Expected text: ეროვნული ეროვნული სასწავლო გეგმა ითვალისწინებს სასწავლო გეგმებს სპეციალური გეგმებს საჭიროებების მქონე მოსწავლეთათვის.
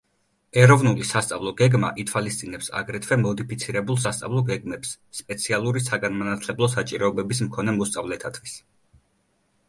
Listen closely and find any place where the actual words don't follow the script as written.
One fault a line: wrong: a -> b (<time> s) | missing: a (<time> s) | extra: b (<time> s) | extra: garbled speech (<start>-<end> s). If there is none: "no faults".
missing: ეროვნული (1.0 s)
extra: აგრეთვე მოდიფიცირებულ (2.8 s)
wrong: გეგმებს -> საგანმანათლებლო (5.9 s)